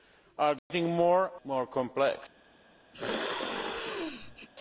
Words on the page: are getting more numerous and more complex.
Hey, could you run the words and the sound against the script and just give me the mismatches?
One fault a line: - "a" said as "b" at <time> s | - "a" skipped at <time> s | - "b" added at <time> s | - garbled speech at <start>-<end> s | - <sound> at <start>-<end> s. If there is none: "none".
- dropout at 0.6-0.7 s
- "numerous and" skipped at 1.3 s
- sneeze at 2.9-4.5 s